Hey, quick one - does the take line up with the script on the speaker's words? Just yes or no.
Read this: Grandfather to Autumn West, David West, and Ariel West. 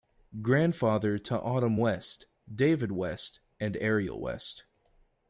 yes